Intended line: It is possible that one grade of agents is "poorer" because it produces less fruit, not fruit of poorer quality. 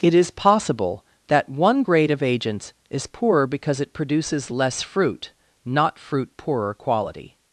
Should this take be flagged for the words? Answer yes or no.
yes